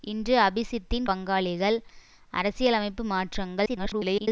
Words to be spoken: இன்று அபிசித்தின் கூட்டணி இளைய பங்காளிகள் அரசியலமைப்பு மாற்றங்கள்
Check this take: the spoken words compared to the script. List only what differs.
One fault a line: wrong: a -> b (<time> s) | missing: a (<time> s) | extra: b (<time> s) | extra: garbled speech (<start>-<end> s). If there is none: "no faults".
missing: கூட்டணி இளைய (1.1 s)
extra: garbled speech (3.7-4.3 s)